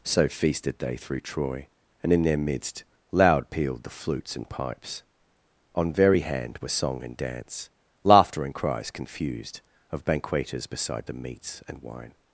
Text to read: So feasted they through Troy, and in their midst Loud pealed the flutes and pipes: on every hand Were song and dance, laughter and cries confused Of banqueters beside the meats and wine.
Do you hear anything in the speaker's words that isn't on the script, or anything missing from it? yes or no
yes